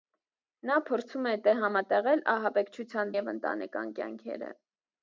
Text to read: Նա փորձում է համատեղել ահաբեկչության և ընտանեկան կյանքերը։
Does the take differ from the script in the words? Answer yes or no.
no